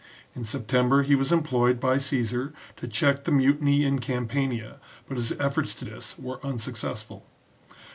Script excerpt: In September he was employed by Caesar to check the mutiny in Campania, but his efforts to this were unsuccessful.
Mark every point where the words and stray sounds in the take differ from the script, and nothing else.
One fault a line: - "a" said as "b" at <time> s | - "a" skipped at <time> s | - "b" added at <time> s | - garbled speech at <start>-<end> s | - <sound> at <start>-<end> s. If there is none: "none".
none